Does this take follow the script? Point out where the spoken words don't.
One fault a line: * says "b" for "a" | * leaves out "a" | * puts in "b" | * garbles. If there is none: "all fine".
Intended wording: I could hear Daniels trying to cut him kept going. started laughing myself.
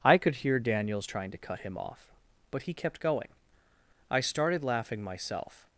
* puts in "off But he"
* puts in "I"